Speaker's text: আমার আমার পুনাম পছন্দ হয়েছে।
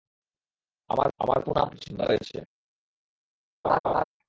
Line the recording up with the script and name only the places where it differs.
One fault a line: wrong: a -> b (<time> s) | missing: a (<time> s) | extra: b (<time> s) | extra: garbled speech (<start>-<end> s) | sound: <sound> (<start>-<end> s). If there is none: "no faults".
sound: laugh (3.6-4.0 s)